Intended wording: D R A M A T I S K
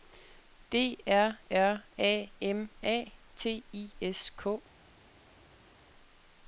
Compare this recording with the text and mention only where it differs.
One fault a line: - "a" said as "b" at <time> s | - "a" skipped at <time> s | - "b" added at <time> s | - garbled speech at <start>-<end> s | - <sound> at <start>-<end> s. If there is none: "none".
- "R" added at 1.5 s